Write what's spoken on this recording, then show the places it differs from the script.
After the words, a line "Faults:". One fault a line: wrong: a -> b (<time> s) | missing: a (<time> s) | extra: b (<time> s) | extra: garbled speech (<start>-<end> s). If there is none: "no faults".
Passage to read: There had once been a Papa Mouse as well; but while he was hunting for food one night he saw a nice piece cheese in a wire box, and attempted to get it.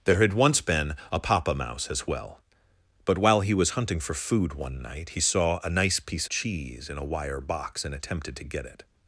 There had once been a Papa Mouse as well; but while he was hunting for food one night he saw a nice piece cheese in a wire box, and attempted to get it.
Faults:
no faults